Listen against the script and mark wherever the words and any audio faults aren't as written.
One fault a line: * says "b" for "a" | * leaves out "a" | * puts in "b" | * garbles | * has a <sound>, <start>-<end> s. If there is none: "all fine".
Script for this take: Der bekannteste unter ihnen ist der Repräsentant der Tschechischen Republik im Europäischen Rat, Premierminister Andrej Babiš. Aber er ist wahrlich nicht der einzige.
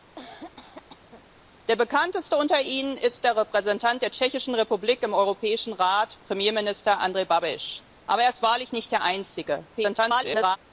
* has a cough, 0.2-1.2 s
* garbles